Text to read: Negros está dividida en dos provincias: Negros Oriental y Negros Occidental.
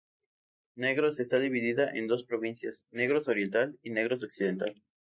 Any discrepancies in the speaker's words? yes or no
no